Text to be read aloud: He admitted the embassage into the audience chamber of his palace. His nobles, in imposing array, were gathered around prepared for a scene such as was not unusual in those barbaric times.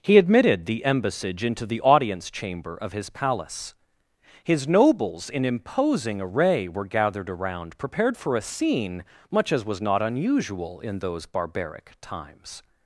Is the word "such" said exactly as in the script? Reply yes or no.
no